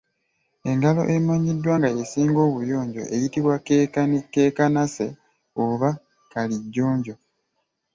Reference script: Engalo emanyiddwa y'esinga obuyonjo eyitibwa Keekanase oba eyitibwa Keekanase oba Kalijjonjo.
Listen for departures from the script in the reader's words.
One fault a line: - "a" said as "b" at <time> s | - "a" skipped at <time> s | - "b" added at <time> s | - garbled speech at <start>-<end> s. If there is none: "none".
- "nga" added at 1.8 s
- "eyitibwa Keekanase oba" skipped at 5.9 s